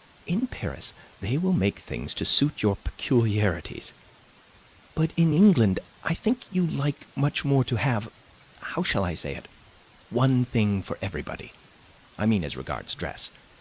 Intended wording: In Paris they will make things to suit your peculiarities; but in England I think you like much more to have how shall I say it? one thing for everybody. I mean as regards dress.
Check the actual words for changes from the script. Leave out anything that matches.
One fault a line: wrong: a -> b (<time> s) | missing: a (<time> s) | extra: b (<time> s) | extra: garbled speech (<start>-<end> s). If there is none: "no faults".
no faults